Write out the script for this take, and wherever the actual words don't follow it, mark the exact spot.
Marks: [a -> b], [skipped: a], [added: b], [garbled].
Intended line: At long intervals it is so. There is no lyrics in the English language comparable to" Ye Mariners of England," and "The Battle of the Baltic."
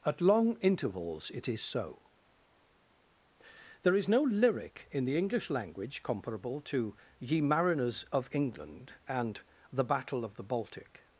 At long intervals it is so. There is no [lyrics -> lyric] in the English language comparable to" Ye Mariners of England," and "The Battle of the Baltic."